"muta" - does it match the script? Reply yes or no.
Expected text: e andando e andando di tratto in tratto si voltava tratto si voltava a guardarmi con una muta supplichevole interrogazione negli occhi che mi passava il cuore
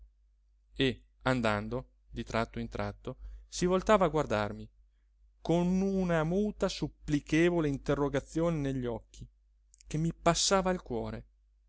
yes